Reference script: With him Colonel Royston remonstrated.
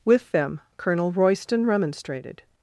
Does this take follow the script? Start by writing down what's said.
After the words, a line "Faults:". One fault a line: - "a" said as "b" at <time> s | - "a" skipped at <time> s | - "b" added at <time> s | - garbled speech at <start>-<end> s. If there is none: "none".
With them Colonel Royston remonstrated.
Faults:
- "him" said as "them" at 0.3 s